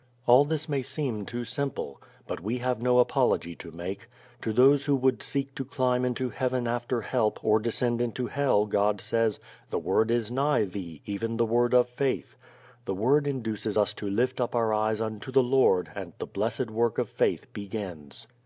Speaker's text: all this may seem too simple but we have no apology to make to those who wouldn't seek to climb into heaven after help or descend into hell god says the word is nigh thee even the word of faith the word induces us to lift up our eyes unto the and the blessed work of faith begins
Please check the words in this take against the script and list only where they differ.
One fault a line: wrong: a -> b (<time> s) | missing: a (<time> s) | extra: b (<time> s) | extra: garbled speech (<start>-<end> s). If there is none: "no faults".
wrong: wouldn't -> would (5.0 s)
extra: lord (15.4 s)